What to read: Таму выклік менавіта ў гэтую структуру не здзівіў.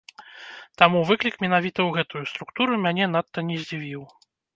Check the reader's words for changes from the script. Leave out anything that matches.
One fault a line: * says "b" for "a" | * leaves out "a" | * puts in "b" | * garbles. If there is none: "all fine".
* puts in "мяне надта"